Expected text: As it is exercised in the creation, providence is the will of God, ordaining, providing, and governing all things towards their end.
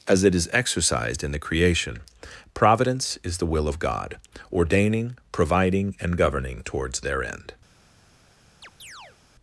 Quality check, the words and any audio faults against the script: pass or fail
fail